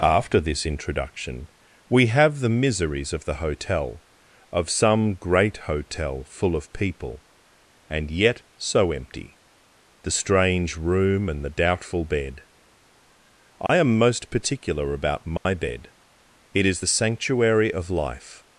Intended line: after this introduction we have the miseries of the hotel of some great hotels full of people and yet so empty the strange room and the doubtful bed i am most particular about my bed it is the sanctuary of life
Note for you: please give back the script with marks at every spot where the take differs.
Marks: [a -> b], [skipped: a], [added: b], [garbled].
after this introduction we have the miseries of the hotel of some great [hotels -> hotel] full of people and yet so empty the strange room and the doubtful bed i am most particular about my bed it is the sanctuary of life